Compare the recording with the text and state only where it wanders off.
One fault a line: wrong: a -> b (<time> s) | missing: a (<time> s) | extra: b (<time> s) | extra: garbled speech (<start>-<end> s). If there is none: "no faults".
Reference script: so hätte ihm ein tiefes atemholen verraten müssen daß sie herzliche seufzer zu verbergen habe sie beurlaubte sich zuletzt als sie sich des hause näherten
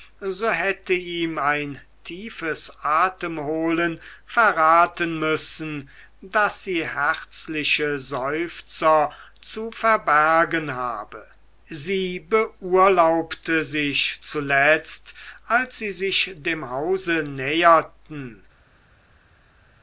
wrong: des -> dem (16.4 s)